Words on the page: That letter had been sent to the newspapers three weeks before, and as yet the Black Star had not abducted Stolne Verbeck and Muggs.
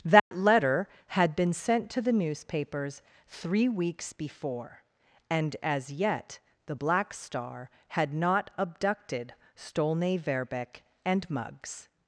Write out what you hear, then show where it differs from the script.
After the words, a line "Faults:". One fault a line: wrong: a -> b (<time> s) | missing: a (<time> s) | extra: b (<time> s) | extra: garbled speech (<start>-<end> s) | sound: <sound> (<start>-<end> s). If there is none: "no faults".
That letter had been sent to the newspapers three weeks before, and as yet the Black Star had not abducted Stolne Verbeck and Muggs.
Faults:
sound: dropout (0.2-0.3 s)